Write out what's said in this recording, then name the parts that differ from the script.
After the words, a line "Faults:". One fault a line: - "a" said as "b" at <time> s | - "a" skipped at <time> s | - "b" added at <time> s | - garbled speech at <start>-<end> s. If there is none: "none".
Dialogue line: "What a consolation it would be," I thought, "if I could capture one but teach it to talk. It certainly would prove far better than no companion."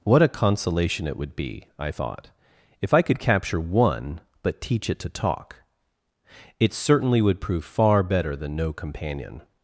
"What a consolation it would be," I thought, "if I could capture one but teach it to talk. It certainly would prove far better than no companion."
Faults:
none